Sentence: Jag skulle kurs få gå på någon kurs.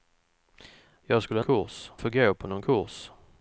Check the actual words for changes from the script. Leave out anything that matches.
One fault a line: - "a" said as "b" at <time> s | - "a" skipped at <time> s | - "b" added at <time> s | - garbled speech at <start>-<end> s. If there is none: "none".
none